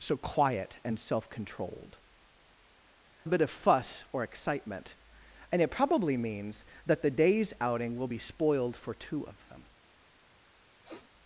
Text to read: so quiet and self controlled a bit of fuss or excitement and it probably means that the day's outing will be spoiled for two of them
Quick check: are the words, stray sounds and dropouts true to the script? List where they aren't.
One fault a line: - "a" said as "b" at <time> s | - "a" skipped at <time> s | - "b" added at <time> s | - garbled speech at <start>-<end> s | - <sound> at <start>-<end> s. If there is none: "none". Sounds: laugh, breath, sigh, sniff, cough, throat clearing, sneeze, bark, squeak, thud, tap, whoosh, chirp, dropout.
- sniff at 10.8-11.1 s